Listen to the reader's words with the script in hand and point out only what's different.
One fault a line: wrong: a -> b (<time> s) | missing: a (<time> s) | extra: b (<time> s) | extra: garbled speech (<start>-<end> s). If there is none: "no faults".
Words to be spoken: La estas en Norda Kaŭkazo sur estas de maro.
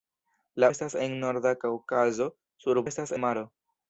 no faults